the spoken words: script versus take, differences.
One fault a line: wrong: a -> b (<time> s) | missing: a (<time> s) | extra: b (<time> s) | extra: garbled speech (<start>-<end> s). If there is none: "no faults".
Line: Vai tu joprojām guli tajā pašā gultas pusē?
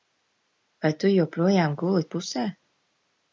missing: tajā pašā gultas (2.1 s)